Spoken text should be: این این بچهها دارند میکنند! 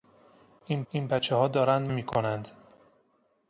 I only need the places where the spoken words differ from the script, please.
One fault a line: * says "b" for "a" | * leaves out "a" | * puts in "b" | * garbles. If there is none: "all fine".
all fine